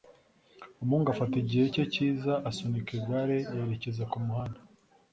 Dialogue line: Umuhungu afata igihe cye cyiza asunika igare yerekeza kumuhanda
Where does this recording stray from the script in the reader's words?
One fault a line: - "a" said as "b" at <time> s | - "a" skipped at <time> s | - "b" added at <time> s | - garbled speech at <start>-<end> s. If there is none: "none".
none